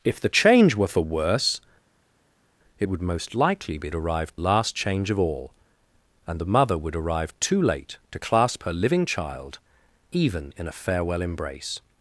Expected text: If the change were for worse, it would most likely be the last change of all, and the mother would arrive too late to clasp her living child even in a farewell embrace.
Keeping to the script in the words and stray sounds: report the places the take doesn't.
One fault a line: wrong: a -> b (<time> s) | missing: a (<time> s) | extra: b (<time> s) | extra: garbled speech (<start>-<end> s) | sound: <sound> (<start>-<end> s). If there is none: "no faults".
wrong: the -> arrive (3.9 s)